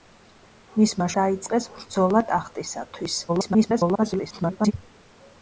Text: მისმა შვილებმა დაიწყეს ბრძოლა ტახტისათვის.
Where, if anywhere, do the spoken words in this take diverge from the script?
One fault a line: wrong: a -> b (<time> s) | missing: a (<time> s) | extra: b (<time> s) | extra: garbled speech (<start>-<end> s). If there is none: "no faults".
missing: შვილებმა (1.1 s)
extra: garbled speech (3.3-4.7 s)